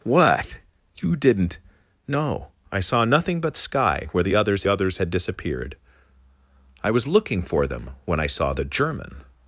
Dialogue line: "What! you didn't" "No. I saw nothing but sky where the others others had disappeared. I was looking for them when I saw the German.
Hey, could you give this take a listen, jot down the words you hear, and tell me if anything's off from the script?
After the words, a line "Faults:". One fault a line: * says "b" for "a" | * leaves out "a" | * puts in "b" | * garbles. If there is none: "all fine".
"What! you didn't" "No. I saw nothing but sky where the others others had disappeared. I was looking for them when I saw the German.
Faults:
all fine